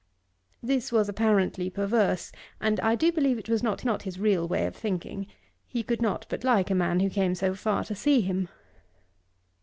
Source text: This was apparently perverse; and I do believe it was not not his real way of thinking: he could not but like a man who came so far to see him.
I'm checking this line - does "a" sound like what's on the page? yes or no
yes